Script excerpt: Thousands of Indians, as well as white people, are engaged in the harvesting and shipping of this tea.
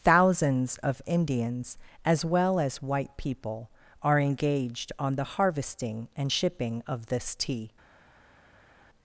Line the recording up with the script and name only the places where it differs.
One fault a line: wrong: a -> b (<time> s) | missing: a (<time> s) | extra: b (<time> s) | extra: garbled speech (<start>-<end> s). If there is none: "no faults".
wrong: in -> on (5.0 s)